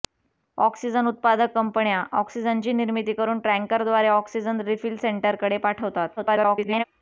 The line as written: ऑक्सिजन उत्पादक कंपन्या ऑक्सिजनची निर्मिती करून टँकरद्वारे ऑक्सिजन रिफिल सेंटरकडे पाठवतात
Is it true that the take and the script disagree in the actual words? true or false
true